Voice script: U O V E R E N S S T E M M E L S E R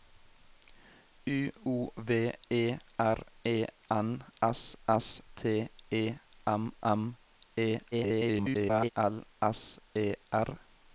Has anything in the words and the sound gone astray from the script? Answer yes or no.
yes